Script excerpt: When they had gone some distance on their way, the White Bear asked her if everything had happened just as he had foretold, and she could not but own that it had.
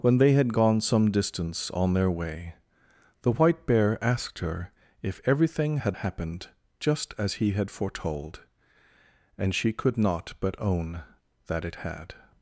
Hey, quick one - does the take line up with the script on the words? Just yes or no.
yes